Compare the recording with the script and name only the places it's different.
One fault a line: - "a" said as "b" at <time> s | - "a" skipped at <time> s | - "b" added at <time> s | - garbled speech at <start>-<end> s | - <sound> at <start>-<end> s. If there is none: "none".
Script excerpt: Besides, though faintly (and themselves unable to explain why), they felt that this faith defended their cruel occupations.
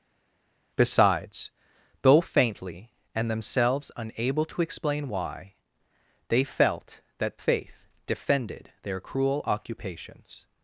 - "this" skipped at 7.4 s